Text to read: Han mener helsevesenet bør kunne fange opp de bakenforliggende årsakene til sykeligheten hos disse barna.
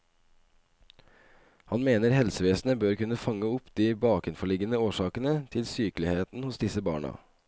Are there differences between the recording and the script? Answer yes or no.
no